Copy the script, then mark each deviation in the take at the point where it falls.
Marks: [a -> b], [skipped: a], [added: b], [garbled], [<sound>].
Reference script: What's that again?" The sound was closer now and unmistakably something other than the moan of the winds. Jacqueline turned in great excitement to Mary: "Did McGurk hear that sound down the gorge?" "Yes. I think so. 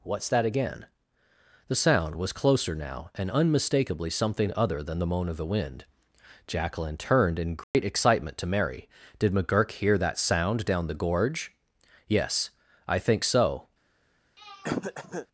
What's that again?" The sound was closer now and unmistakably something other than the moan of the [winds. -> wind] Jacqueline turned in great [dropout] excitement to Mary: "Did McGurk hear that sound down the gorge?" "Yes. I think so. [throat clearing]